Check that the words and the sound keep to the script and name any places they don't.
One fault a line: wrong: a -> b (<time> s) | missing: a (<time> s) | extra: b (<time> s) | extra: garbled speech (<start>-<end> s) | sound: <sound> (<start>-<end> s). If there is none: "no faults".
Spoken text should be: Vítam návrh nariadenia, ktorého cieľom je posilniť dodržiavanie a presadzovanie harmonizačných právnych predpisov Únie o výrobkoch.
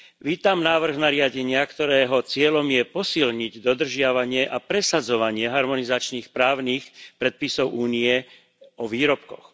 no faults